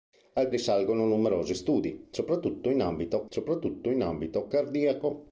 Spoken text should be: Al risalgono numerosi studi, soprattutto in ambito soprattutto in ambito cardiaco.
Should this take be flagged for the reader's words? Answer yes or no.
no